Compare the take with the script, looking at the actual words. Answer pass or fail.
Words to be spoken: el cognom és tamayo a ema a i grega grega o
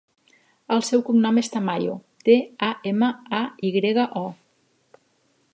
fail